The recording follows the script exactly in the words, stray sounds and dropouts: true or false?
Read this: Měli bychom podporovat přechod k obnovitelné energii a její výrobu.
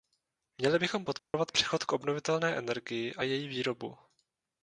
false